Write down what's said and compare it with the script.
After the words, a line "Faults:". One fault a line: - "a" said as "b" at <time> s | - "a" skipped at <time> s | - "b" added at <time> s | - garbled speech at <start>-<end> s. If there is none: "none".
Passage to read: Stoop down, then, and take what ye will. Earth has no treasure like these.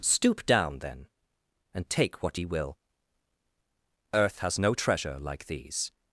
Stoop down, then, and take what ye will. Earth has no treasure like these.
Faults:
none